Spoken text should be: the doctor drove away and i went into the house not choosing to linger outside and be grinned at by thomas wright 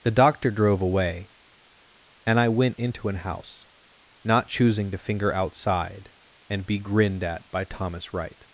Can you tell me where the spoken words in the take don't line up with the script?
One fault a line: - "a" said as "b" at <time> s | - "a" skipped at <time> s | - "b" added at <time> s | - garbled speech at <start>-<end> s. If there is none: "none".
- "the" said as "an" at 3.1 s
- "linger" said as "finger" at 5.0 s